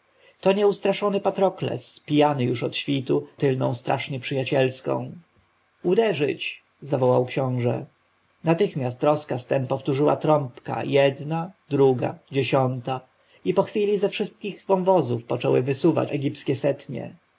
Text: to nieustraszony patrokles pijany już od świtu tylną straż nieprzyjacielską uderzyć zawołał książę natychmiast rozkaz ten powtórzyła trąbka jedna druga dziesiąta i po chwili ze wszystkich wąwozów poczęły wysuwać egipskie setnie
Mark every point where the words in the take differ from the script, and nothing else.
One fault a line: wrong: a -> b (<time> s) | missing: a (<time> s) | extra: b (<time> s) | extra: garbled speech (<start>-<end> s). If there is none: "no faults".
no faults